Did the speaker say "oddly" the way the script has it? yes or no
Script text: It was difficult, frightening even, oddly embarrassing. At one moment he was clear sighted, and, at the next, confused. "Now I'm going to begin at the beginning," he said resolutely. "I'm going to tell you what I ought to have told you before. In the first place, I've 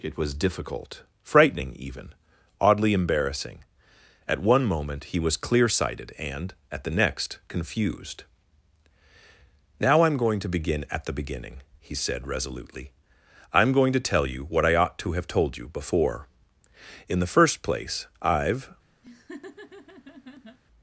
yes